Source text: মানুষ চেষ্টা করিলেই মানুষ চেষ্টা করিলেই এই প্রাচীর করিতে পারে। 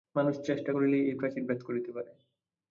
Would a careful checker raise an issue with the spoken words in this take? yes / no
yes